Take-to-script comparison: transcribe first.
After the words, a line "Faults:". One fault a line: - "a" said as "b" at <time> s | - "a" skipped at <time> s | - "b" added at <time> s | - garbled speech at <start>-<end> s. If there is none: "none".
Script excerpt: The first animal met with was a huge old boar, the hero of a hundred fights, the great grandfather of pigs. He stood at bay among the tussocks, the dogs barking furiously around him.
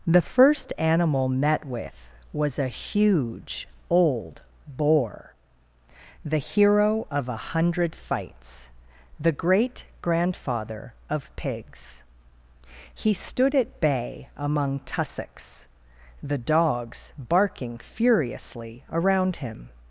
The first animal met with was a huge old boar, the hero of a hundred fights, the great grandfather of pigs. He stood at bay among tussocks, the dogs barking furiously around him.
Faults:
- "the" skipped at 14.8 s